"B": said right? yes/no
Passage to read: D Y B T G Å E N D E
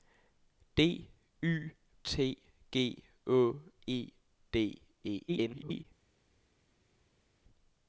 no